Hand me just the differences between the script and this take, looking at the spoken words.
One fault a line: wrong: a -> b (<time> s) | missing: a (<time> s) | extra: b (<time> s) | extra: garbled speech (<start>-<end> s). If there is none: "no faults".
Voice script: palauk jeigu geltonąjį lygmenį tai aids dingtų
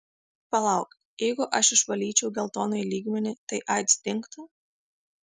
extra: aš išvalyčiau (1.6 s)